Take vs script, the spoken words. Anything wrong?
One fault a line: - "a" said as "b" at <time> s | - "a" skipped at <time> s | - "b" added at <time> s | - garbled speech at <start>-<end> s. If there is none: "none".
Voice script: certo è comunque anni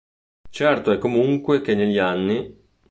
- "che negli" added at 1.6 s